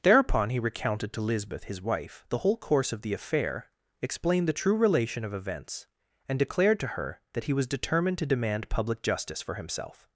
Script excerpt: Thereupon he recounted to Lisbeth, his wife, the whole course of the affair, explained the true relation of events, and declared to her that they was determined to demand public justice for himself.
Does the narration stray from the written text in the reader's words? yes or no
yes